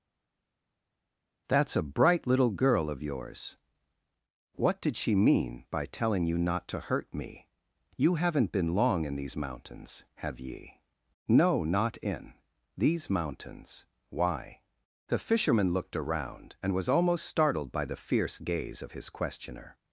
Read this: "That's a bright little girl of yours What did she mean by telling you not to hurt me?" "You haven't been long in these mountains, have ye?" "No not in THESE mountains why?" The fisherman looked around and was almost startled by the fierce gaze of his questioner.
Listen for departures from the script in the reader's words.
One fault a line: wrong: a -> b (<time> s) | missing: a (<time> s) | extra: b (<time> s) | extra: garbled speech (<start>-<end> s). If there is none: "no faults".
no faults